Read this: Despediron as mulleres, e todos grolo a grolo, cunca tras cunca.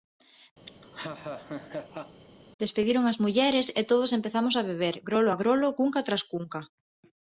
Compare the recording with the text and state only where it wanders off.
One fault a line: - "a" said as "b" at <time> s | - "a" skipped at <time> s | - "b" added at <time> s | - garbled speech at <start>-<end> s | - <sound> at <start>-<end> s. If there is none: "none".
- laugh at 0.7-2.2 s
- "empezamos a beber" added at 4.2 s